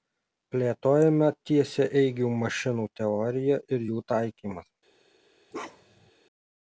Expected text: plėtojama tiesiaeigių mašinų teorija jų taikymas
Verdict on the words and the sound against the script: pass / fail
fail